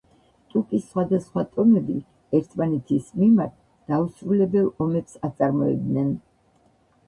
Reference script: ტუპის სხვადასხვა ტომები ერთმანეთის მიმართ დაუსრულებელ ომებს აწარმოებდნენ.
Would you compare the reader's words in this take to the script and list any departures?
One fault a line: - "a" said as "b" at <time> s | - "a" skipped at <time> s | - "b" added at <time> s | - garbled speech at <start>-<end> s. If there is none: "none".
none